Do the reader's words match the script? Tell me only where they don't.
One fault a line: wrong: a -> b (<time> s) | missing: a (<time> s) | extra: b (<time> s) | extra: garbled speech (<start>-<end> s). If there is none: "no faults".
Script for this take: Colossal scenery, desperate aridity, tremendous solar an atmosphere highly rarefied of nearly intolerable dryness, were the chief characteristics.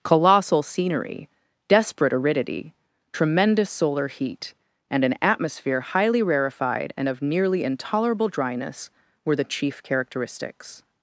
extra: heat and (4.1 s)
extra: and (6.9 s)